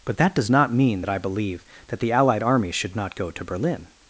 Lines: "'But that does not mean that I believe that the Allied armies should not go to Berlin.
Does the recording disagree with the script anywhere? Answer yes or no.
no